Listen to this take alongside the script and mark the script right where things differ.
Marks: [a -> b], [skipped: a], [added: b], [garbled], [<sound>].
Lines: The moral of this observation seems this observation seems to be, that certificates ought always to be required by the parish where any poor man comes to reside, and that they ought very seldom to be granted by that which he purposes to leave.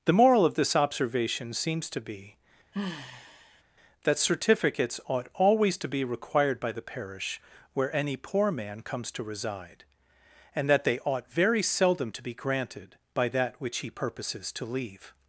The moral of this observation seems [skipped: this observation seems] to be, [sigh] that certificates ought always to be required by the parish where any poor man comes to reside, and that they ought very seldom to be granted by that which he purposes to leave.